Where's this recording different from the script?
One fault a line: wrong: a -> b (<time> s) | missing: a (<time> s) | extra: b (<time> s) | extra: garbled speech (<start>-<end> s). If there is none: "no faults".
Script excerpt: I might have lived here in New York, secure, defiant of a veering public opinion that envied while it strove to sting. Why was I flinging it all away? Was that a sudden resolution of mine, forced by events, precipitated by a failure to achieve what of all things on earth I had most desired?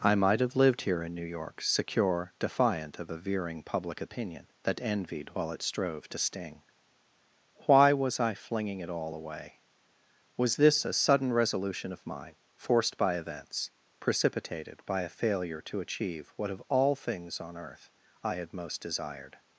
wrong: that -> this (10.6 s)